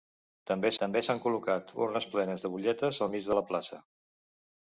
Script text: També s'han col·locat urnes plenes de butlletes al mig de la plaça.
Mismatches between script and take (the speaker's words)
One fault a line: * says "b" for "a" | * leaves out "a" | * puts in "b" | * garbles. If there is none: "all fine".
* puts in "també"